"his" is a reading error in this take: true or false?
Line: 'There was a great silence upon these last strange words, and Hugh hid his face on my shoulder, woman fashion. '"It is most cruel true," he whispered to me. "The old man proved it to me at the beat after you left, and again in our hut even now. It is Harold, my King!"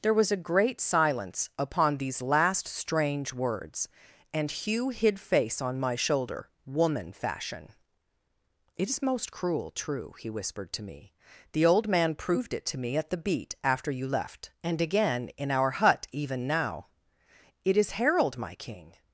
true